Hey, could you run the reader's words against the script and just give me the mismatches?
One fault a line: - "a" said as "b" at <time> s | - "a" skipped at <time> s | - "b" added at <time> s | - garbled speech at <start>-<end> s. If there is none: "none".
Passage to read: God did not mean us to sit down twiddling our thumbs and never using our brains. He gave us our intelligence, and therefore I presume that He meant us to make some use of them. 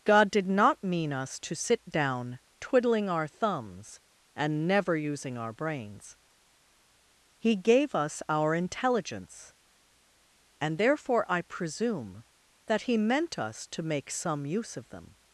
none